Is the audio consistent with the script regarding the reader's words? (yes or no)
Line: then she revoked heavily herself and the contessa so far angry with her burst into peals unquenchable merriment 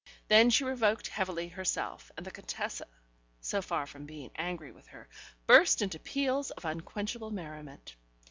no